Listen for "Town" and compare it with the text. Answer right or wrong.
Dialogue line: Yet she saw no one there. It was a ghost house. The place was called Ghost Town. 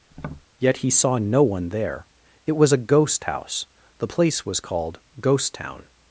right